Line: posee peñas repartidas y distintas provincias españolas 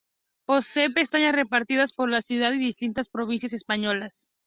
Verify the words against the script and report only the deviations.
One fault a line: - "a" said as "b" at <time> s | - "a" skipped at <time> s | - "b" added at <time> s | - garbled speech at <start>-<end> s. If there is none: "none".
- "por la ciudad" added at 1.9 s